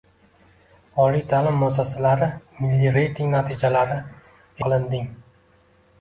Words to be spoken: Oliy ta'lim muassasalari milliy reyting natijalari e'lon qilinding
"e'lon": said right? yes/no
no